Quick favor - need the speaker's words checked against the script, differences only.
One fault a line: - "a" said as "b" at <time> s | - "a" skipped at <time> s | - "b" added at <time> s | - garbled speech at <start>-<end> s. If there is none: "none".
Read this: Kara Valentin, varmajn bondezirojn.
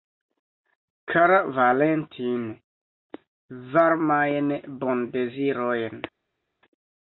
none